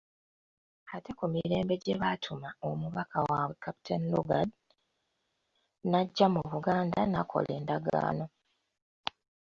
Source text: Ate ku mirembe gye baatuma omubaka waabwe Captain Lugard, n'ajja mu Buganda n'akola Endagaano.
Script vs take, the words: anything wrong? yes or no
no